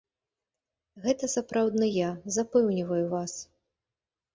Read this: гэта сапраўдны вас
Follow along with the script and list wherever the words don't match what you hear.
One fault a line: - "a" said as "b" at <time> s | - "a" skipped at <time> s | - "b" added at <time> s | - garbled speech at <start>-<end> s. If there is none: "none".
- "я запэўніваю" added at 2.0 s